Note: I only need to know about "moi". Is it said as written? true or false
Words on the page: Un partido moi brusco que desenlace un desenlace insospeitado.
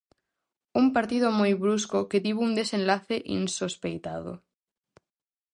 true